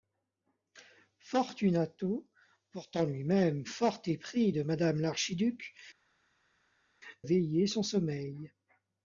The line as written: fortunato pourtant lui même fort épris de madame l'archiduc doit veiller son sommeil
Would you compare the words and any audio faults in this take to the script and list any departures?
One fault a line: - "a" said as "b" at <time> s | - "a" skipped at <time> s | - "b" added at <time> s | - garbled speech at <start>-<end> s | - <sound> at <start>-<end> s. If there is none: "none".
- "doit" skipped at 5.7 s